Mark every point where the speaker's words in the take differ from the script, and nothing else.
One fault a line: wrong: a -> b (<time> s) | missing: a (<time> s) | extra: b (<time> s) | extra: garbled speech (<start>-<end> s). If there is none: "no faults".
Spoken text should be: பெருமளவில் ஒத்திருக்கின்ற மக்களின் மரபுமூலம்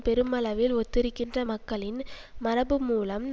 no faults